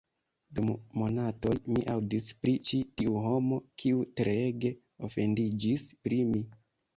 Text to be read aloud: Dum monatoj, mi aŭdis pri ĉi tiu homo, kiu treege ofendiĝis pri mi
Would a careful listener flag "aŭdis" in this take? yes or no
no